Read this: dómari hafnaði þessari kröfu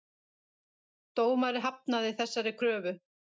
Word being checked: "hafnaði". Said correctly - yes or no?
yes